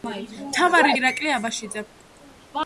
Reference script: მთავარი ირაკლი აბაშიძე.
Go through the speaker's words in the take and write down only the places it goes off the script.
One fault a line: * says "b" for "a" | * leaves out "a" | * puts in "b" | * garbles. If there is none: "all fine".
all fine